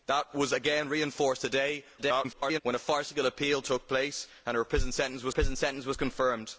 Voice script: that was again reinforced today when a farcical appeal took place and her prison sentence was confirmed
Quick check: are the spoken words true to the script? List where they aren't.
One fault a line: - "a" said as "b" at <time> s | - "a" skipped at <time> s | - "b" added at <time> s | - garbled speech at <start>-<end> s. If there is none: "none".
- garbled speech at 2.0-2.6 s
- "prison sentence was" added at 5.3 s